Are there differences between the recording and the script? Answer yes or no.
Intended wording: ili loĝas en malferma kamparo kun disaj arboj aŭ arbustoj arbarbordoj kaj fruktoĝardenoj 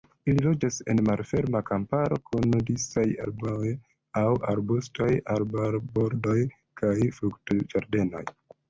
no